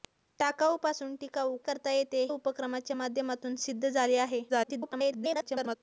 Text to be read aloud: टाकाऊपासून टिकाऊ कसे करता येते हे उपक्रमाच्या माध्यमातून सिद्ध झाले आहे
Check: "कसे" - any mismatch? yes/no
yes